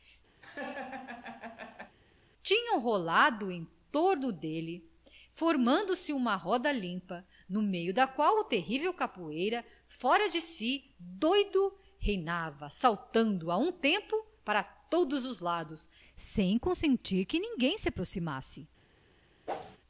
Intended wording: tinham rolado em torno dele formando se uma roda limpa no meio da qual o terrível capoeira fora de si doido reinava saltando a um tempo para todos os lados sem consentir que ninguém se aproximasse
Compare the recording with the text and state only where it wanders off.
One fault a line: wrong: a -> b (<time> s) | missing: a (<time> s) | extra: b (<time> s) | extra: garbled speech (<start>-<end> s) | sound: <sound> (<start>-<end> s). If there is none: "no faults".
sound: laugh (0.4-2.0 s)
sound: whoosh (19.5-19.8 s)